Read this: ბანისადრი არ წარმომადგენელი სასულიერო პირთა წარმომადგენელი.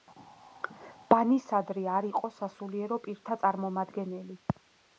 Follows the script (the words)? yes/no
no